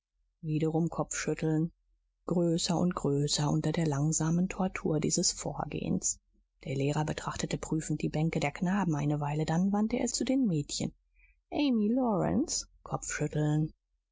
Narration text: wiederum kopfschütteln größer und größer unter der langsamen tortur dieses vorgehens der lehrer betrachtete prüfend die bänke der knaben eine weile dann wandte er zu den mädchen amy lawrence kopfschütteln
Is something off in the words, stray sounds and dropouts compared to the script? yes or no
no